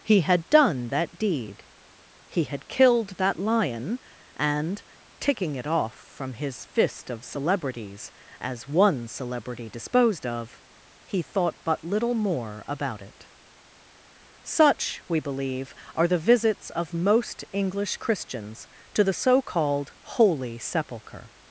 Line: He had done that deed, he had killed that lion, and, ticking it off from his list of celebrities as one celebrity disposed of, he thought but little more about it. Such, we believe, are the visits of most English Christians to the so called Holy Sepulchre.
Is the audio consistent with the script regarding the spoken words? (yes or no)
no